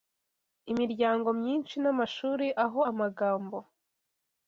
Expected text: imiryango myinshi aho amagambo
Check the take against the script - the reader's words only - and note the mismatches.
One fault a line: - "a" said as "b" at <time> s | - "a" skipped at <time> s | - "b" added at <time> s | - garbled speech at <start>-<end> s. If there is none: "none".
- "n'amashuri" added at 1.8 s